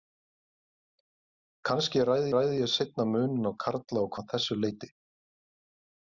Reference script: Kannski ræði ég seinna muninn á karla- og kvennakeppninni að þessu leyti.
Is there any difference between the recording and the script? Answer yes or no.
yes